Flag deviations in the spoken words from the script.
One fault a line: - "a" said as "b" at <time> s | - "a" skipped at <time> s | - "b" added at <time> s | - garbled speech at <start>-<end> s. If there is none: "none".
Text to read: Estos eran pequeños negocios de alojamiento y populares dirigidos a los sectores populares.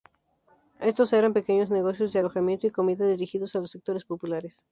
- "populares" said as "comida" at 2.7 s